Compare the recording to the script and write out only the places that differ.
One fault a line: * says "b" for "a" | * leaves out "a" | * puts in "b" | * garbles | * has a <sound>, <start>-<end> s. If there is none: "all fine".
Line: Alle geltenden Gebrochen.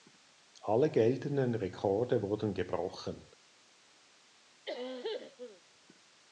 * puts in "Rekorde wurden"
* has a cough, 4.6-5.6 s